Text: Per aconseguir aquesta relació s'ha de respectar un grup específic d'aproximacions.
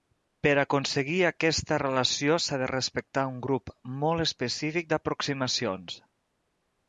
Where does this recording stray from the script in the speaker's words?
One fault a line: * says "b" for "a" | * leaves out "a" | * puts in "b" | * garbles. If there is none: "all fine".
* puts in "molt"